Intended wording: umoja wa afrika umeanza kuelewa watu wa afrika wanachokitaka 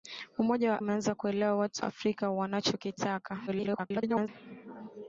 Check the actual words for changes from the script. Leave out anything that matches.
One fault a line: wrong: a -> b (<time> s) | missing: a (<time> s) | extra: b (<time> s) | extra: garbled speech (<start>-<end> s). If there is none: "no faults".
missing: afrika (0.8 s)
missing: wa (1.8 s)
extra: garbled speech (3.5-4.3 s)